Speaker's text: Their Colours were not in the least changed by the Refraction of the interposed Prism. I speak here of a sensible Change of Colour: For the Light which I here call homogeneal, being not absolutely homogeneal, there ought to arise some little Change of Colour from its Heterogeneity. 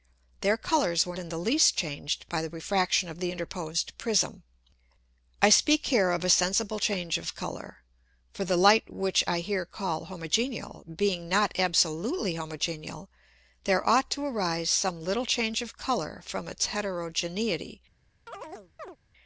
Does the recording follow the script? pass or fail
fail